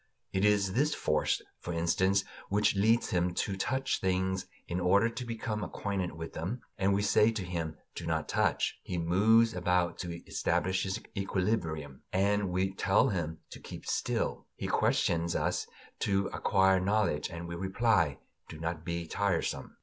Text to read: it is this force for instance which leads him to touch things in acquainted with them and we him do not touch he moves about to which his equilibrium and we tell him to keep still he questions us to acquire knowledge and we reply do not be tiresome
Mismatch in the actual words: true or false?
true